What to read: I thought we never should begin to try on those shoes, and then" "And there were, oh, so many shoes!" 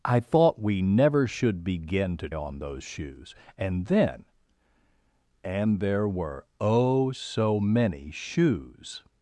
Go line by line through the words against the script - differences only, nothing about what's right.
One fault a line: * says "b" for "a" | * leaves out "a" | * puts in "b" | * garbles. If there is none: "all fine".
* leaves out "try"